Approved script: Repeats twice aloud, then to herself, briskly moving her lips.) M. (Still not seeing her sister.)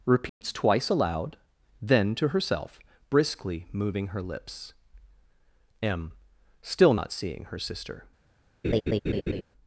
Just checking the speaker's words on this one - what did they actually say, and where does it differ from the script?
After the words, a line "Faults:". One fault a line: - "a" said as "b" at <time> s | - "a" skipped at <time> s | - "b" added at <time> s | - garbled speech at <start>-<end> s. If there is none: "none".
Repeats twice aloud, then to herself, briskly moving her lips.) M. (Still not seeing her sister.)
Faults:
none